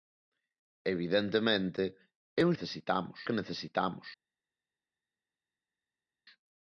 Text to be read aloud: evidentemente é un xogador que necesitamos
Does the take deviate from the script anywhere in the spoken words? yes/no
yes